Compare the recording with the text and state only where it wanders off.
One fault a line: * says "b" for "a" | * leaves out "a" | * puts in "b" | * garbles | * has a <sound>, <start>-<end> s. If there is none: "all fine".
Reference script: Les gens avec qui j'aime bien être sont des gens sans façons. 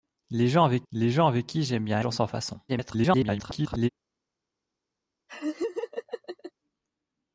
* puts in "les gens avec"
* leaves out "être sont des"
* garbles
* has a laugh, 5.3-6.5 s